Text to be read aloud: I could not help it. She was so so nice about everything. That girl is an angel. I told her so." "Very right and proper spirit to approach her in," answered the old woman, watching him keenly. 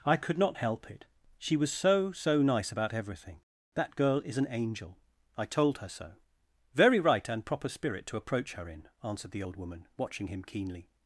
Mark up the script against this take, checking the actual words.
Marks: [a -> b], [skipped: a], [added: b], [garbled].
I could not help it. She was so so nice about everything. That girl is an angel. I told her so." "Very right and proper spirit to approach her in," answered the old woman, watching him keenly.